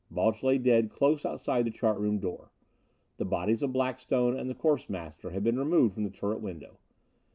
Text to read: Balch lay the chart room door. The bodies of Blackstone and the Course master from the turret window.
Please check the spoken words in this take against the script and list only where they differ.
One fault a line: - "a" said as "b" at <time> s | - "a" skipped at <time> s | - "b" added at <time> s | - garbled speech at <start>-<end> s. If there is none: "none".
- "dead close outside" added at 0.6 s
- "had been removed" added at 5.3 s